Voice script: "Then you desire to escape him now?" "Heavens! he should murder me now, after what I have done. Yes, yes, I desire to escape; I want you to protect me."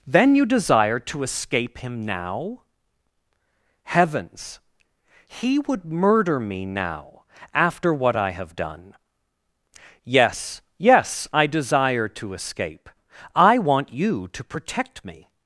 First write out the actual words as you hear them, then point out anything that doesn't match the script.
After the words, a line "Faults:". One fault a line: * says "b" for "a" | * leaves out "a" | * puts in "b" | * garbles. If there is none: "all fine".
"Then you desire to escape him now?" "Heavens! he would murder me now, after what I have done. Yes, yes, I desire to escape; I want you to protect me."
Faults:
* says "would" for "should"